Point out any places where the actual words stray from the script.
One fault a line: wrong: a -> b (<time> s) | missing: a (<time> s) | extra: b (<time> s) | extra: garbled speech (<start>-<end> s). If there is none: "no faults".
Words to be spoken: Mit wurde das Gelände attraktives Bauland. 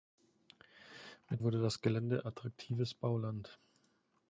no faults